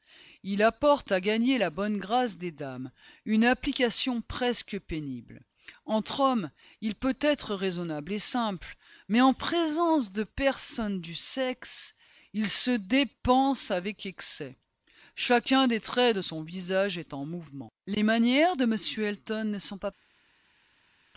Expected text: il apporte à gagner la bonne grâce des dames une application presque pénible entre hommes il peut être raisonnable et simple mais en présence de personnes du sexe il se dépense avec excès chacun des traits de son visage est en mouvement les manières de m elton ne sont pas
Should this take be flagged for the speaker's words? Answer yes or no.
no